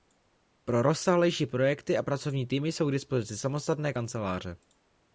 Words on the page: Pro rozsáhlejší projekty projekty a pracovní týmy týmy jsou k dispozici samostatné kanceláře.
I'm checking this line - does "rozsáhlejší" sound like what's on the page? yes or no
yes